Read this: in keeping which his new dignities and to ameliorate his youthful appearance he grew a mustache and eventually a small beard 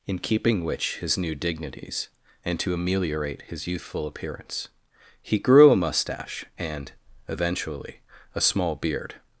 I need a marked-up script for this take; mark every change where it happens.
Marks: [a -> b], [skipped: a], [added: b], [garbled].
in keeping which his new dignities and to ameliorate his youthful appearance he grew a mustache and eventually a small beard